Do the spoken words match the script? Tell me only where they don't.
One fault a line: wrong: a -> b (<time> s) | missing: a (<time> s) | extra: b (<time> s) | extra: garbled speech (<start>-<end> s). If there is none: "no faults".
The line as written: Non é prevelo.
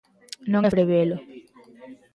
no faults